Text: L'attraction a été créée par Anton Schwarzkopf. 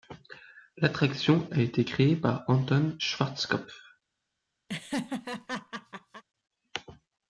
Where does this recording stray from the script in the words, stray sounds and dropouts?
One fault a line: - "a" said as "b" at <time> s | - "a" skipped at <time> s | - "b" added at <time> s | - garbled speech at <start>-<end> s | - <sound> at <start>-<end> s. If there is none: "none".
- laugh at 4.7-6.2 s